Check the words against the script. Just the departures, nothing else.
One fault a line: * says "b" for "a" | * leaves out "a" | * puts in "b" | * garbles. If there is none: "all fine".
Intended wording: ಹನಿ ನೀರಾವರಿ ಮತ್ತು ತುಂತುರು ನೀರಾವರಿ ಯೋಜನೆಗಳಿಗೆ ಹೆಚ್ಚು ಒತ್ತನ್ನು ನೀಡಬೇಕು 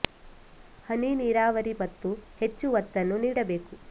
* leaves out "ತುಂತುರು ನೀರಾವರಿ ಯೋಜನೆಗಳಿಗೆ"